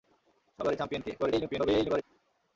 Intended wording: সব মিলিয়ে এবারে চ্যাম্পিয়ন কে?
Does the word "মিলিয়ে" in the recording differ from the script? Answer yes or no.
yes